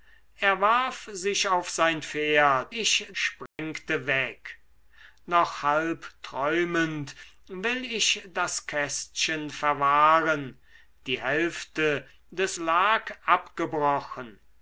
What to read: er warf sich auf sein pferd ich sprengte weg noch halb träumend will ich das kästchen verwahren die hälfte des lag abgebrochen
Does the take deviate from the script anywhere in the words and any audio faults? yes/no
yes